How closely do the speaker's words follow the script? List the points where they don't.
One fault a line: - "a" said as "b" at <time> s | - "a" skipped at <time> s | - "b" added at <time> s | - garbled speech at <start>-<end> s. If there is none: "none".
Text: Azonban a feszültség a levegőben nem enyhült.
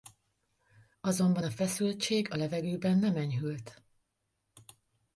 none